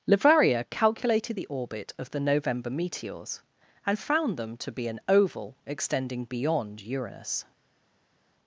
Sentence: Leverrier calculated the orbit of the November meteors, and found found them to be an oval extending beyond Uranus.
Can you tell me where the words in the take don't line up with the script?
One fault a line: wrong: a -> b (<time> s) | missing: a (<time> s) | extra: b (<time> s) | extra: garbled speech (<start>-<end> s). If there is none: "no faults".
missing: found (4.4 s)